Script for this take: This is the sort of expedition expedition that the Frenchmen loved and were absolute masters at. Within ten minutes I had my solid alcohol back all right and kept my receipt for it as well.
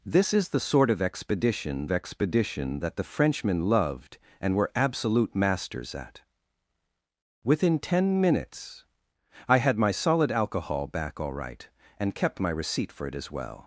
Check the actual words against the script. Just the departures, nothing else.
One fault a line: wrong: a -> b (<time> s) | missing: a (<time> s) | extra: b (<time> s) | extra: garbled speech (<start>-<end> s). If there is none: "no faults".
no faults